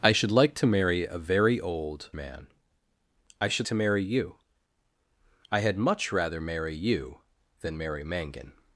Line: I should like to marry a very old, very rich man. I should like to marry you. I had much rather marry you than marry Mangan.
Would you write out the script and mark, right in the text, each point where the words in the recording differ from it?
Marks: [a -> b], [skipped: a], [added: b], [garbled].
I should like to marry a very old, [skipped: very rich] man. I should [skipped: like] to marry you. I had much rather marry you than marry Mangan.